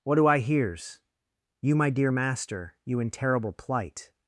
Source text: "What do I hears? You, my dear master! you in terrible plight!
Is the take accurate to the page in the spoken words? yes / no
yes